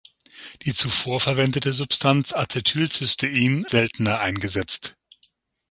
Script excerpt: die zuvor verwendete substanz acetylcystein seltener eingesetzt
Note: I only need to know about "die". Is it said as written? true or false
true